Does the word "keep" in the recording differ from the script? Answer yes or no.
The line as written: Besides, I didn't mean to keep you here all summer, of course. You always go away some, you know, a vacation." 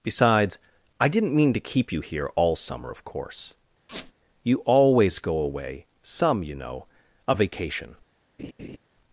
no